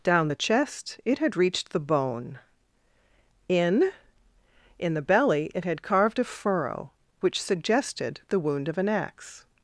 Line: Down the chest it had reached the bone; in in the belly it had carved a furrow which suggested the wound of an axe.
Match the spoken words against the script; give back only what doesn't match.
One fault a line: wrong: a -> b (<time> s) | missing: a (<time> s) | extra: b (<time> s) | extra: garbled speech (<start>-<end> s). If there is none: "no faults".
no faults